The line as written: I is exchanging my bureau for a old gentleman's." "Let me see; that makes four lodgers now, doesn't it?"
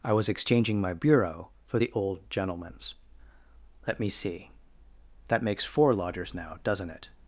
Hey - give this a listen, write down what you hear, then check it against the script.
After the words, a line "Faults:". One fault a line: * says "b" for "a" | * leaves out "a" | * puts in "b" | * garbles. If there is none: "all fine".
I was exchanging my bureau for the old gentleman's." "Let me see; that makes four lodgers now, doesn't it?"
Faults:
* says "was" for "is"
* says "the" for "a"